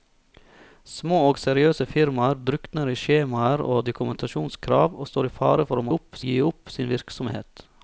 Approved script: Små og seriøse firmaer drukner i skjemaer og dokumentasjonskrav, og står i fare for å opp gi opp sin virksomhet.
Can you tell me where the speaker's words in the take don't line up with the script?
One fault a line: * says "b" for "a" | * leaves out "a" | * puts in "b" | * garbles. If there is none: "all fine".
all fine